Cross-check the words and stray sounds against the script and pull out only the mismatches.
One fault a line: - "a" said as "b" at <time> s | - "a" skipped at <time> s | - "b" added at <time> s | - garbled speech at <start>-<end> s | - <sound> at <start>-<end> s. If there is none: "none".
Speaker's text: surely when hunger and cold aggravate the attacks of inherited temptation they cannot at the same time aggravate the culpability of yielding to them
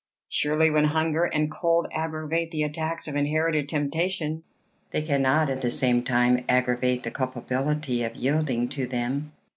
none